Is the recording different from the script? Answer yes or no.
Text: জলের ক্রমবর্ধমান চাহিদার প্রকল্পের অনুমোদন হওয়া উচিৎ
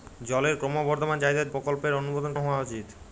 no